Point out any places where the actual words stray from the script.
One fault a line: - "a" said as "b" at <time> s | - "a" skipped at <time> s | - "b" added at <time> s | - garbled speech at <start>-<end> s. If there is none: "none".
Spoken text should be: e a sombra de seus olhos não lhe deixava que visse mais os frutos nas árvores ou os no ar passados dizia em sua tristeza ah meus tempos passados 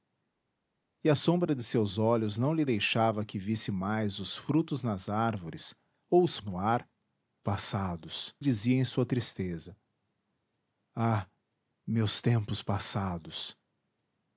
none